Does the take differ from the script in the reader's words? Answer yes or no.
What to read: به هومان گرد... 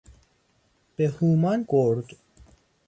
no